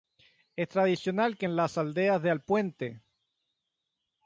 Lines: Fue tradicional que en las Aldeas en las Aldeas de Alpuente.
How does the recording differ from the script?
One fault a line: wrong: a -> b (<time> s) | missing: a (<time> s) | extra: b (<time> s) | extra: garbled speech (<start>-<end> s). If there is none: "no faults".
wrong: Fue -> Es (0.6 s)
missing: en las Aldeas (2.2 s)